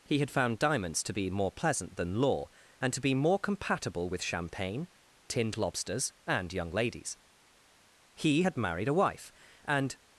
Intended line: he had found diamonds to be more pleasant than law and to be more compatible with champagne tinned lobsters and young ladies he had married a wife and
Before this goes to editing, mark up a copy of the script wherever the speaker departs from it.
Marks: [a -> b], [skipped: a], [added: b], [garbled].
he had found diamonds to be more pleasant than law and to be more compatible with champagne tinned lobsters and young ladies he had married a wife and